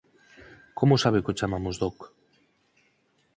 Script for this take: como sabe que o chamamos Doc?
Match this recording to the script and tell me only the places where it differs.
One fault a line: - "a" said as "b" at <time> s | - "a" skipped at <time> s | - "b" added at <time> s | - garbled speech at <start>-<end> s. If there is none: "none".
none